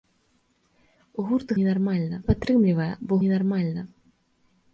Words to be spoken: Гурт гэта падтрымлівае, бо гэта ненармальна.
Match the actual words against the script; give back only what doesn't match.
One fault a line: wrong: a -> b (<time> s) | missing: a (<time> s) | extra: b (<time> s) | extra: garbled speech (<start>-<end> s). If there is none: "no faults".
wrong: гэта -> ненармальна (1.6 s)
missing: гэта (3.1 s)